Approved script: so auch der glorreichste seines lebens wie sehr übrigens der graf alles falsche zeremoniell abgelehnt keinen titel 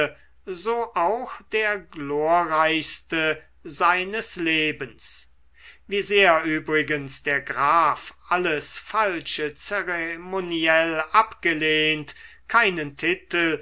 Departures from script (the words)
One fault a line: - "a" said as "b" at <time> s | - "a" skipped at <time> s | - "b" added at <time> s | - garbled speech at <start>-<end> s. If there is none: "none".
none